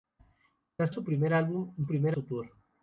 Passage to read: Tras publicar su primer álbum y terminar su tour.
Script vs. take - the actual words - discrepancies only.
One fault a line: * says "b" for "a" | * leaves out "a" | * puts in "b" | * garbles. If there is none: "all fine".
* leaves out "publicar"
* says "primer" for "terminar"